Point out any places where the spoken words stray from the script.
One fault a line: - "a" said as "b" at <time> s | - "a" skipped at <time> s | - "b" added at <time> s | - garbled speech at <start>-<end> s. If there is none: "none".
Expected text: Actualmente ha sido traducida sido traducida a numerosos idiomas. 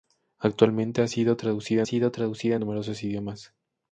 none